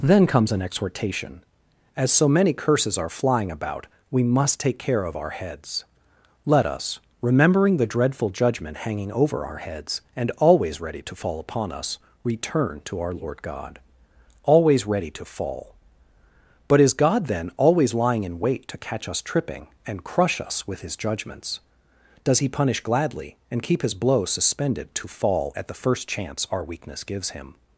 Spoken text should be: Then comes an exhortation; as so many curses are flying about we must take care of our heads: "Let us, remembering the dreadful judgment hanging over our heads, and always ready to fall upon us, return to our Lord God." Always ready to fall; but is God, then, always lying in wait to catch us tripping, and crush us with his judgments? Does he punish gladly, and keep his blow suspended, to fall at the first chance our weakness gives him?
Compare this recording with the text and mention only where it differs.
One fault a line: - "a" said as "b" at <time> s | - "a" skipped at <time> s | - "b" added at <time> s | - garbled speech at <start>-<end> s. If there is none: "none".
none